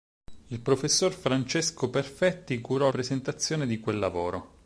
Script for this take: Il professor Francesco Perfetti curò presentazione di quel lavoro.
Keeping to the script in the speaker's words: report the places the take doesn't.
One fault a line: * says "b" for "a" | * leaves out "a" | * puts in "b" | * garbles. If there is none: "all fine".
all fine